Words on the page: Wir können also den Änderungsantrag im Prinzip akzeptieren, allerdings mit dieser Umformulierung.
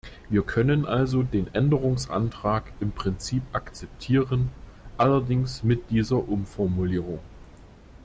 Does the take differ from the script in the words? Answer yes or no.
no